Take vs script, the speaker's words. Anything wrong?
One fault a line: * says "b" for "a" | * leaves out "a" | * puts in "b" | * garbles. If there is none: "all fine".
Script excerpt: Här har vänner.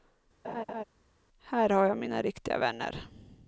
* puts in "jag mina riktiga"